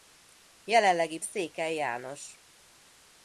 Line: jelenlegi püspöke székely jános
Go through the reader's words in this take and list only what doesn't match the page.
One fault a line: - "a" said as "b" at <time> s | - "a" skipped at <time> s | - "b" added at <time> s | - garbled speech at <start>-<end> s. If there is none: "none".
- "püspöke" skipped at 1.2 s